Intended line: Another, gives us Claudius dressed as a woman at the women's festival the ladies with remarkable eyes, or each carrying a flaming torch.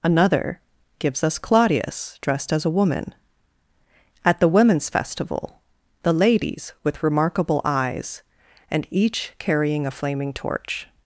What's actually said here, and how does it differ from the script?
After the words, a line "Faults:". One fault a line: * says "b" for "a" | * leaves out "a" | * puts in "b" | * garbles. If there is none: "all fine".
Another, gives us Claudius dressed as a woman at the women's festival the ladies with remarkable eyes, and each carrying a flaming torch.
Faults:
* says "and" for "or"